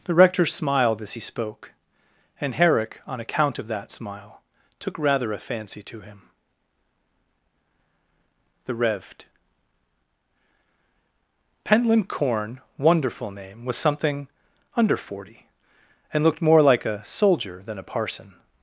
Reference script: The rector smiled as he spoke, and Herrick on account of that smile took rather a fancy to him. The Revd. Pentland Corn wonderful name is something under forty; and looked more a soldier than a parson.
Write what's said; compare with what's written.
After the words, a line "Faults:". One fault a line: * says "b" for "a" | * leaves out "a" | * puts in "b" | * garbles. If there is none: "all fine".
The rector smiled as he spoke, and Herrick on account of that smile took rather a fancy to him. The Revd. Pentland Corn wonderful name was something under forty; and looked more like a soldier than a parson.
Faults:
* says "was" for "is"
* puts in "like"